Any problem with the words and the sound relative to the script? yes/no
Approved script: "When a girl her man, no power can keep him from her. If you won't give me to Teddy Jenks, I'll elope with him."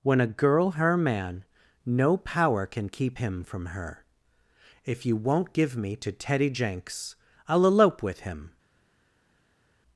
no